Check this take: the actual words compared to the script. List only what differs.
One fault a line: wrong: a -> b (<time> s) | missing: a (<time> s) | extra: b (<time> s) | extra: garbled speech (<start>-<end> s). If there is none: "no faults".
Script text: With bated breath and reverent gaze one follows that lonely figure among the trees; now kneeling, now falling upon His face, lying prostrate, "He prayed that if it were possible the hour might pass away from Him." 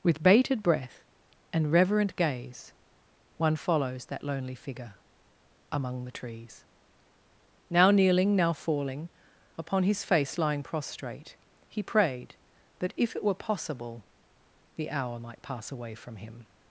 no faults